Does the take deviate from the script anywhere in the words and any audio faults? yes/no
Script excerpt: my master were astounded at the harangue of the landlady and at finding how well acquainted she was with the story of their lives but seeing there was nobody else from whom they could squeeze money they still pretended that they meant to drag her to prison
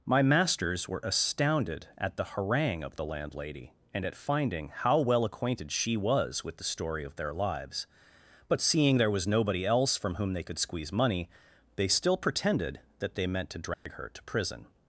yes